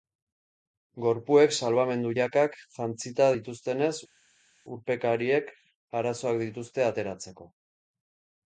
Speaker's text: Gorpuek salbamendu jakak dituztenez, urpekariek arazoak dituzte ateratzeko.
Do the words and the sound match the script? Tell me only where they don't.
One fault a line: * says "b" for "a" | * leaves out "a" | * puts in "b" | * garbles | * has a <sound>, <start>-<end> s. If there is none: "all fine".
* puts in "jantzita"